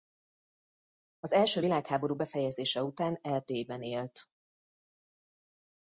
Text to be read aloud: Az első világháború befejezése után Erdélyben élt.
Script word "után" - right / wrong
right